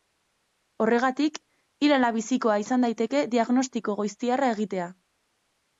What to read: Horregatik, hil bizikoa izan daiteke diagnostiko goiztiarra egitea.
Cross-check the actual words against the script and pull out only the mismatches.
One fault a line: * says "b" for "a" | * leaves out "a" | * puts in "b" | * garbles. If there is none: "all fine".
* puts in "ala"